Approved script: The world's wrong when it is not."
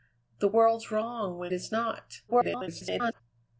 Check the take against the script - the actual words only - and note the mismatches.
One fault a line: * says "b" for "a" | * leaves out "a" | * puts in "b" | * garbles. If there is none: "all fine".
* leaves out "it"
* garbles